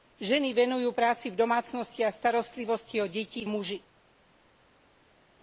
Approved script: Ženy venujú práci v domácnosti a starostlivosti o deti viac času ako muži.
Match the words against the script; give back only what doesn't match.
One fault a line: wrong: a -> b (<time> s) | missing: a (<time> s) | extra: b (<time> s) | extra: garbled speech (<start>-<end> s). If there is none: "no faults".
missing: viac času ako (3.5 s)